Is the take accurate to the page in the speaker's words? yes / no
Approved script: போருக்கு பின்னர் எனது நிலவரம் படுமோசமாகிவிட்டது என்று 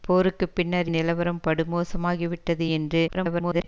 no